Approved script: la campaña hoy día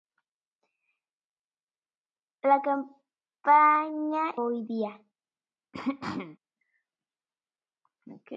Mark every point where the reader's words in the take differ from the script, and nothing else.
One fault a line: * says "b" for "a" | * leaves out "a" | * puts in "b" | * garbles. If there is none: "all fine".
all fine